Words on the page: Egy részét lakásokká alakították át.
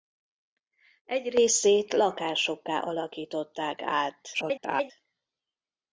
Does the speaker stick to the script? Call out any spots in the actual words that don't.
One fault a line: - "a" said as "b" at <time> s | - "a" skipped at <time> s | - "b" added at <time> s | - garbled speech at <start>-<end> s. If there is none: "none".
- garbled speech at 4.3-4.9 s